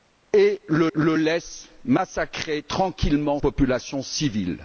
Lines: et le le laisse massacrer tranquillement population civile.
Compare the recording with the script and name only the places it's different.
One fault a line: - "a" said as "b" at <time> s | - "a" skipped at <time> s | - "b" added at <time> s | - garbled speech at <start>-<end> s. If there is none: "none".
none